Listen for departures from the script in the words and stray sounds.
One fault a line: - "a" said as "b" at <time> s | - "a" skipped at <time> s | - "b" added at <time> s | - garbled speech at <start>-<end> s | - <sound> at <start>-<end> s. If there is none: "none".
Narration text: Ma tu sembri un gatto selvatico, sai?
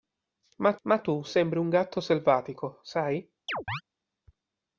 - "ma" added at 0.8 s
- chirp at 3.5-3.8 s